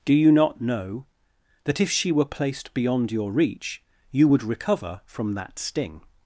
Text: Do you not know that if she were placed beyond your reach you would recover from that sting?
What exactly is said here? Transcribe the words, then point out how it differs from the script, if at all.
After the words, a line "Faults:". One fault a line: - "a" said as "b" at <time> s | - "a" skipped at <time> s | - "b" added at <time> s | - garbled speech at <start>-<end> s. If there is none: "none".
Do you not know that if she were placed beyond your reach you would recover from that sting?
Faults:
none